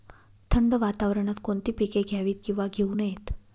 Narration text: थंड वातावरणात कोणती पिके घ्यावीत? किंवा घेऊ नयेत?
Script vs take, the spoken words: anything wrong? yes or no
no